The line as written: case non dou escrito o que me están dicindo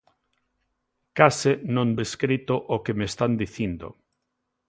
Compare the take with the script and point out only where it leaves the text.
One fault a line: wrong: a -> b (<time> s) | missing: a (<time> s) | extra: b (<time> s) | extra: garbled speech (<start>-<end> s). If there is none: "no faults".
missing: dou (1.9 s)